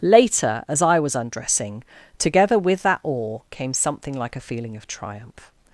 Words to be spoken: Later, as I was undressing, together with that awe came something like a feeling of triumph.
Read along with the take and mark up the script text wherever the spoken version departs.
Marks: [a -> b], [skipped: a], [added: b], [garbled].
Later, as I was undressing, together with that awe came something like a feeling of triumph.